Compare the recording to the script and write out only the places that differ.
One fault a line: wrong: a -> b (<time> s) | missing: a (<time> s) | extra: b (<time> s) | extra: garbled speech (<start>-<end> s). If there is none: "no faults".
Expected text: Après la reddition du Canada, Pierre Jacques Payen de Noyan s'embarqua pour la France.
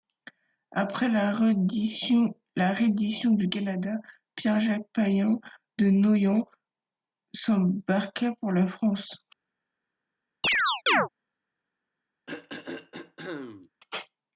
no faults